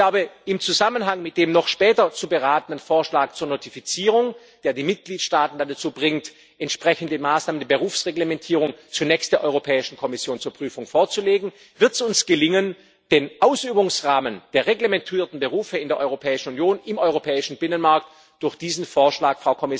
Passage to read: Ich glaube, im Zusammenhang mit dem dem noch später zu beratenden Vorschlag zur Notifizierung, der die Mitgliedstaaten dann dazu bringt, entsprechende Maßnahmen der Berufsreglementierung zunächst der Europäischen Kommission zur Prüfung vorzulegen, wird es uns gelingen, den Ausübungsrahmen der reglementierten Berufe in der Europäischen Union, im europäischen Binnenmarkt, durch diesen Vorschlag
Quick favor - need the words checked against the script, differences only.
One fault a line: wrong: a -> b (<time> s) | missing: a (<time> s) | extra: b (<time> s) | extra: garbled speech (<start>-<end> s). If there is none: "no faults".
missing: dem (1.5 s)